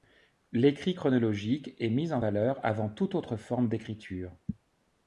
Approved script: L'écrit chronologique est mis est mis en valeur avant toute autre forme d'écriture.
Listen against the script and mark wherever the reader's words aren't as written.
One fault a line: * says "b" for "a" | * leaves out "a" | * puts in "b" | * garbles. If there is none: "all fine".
* leaves out "est mis"